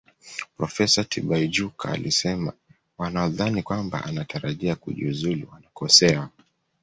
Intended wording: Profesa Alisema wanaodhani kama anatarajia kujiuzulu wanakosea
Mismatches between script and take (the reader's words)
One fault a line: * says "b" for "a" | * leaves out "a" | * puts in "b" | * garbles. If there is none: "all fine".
* puts in "Tibaijuka"
* says "kwamba" for "kama"